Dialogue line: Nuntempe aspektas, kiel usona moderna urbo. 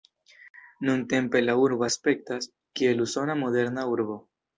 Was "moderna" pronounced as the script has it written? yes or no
yes